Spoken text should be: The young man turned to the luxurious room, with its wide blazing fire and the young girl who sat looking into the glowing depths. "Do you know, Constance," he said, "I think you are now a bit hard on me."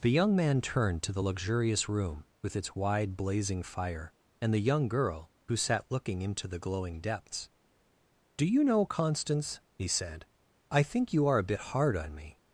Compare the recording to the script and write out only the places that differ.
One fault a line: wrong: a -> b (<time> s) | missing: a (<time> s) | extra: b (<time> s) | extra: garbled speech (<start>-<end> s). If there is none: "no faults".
missing: now (11.4 s)